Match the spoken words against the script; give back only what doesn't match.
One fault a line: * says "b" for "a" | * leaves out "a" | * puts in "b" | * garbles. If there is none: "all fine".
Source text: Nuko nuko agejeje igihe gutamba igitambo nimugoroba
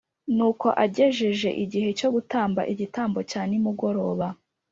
* leaves out "nuko"
* puts in "cyo"
* puts in "cya"